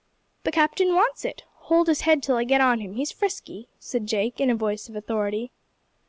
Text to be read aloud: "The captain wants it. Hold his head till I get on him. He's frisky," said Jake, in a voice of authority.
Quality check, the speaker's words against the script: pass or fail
pass